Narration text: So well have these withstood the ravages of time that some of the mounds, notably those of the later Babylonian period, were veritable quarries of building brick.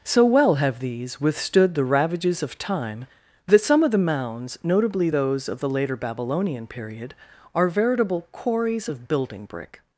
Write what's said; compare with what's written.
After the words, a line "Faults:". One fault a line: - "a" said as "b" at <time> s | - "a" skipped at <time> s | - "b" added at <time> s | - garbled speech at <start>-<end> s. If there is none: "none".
So well have these withstood the ravages of time that some of the mounds, notably those of the later Babylonian period, are veritable quarries of building brick.
Faults:
- "were" said as "are" at 7.5 s